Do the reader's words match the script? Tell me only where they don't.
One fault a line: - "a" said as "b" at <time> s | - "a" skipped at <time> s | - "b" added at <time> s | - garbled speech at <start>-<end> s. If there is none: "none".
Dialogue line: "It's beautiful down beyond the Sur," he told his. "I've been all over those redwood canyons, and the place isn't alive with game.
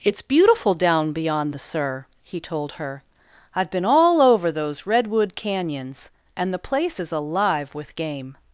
- "his" said as "her" at 2.7 s
- "isn't" said as "is" at 7.0 s